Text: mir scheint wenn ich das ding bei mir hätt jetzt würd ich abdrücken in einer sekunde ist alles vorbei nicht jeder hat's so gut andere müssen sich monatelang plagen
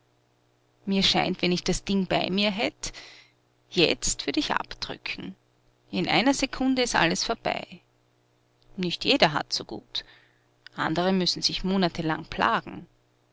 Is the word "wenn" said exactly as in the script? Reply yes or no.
yes